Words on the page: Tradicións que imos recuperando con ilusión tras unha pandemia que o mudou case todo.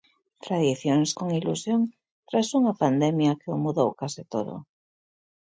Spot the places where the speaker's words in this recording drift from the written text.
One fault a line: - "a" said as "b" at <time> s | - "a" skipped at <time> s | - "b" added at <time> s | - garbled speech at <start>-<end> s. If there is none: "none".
- "que imos recuperando" skipped at 1.1 s